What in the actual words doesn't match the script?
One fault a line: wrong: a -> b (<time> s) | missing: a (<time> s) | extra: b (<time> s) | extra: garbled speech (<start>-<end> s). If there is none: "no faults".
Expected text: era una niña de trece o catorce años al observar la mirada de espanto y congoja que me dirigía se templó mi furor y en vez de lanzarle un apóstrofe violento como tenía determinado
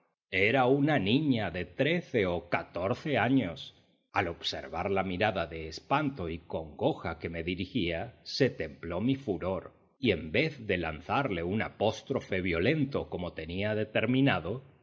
no faults